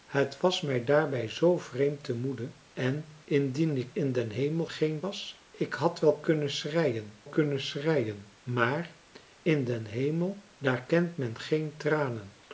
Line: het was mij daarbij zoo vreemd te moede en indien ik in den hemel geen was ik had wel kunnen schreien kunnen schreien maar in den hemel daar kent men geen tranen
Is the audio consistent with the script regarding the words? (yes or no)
yes